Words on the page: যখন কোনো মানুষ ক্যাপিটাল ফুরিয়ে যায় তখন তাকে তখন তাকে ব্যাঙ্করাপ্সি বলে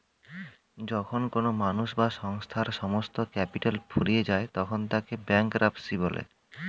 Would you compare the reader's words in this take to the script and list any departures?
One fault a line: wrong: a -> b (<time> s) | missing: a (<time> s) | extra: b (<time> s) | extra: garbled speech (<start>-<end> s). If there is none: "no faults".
extra: বা সংস্থার সমস্ত (1.9 s)
missing: তখন তাকে (5.1 s)